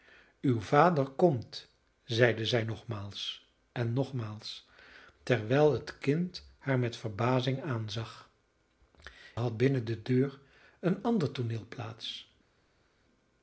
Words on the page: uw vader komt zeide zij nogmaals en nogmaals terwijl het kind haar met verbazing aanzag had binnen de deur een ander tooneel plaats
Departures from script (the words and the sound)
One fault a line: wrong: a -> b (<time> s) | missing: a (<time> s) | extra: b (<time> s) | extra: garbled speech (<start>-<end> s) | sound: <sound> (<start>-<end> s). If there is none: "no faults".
no faults